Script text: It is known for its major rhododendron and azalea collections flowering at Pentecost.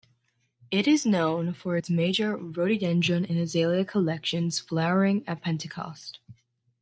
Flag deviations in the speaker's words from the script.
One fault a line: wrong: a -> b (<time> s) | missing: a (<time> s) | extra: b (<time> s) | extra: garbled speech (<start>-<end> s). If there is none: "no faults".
no faults